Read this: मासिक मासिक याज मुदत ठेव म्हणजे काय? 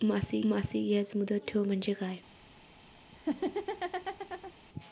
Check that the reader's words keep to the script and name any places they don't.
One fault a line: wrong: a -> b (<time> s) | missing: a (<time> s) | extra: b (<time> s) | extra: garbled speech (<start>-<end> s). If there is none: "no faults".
no faults